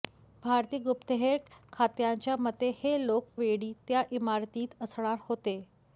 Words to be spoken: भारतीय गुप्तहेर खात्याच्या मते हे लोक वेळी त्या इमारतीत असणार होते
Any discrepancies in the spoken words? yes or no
no